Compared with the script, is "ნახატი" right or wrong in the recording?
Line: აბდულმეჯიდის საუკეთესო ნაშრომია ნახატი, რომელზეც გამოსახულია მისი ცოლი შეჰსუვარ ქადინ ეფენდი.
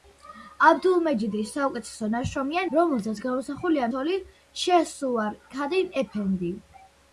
wrong